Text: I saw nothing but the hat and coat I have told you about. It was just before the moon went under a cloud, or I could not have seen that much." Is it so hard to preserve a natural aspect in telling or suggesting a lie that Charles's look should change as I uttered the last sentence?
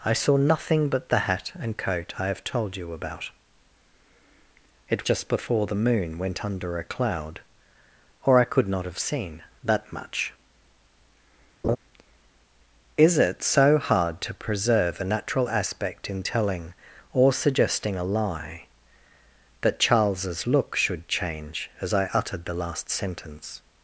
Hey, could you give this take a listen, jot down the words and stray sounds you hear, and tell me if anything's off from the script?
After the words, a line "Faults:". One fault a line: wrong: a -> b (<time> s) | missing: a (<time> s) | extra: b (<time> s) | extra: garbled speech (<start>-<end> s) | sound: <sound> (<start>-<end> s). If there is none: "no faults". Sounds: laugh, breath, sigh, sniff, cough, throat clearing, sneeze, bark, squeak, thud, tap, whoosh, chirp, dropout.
I saw nothing but the hat and coat I have told you about. It just before the moon went under a cloud, or I could not have seen that much." Is it so hard to preserve a natural aspect in telling or suggesting a lie that Charles's look should change as I uttered the last sentence?
Faults:
missing: was (5.0 s)
sound: laugh (11.6-11.8 s)